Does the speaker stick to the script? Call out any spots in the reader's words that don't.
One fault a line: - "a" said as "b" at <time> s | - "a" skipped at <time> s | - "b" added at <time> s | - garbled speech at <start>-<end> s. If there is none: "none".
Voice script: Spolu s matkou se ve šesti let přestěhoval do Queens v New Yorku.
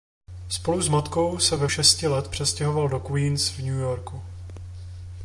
none